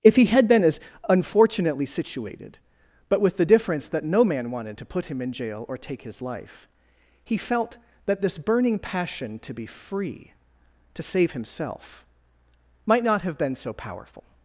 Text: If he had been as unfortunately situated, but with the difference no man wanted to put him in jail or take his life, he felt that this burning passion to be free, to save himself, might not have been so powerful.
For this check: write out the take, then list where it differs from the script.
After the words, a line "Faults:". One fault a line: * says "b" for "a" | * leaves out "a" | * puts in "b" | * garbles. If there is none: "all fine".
If he had been as unfortunately situated, but with the difference that no man wanted to put him in jail or take his life, he felt that this burning passion to be free, to save himself, might not have been so powerful.
Faults:
* puts in "that"